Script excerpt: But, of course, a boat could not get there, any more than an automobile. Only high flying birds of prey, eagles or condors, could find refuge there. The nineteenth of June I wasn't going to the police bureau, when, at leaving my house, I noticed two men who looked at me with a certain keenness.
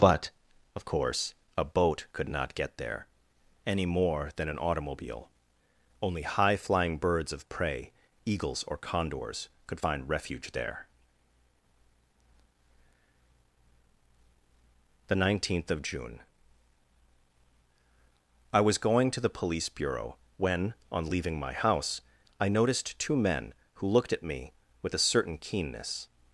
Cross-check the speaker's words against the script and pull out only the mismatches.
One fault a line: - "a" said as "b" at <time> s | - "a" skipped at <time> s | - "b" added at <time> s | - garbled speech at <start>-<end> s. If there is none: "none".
- "wasn't" said as "was" at 18.6 s
- "at" said as "on" at 20.9 s